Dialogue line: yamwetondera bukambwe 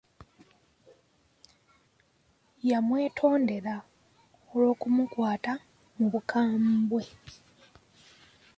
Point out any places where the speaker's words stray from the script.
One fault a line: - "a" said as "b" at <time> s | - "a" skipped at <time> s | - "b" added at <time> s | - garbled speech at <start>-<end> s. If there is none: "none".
- "olw'okumukwata mu" added at 4.5 s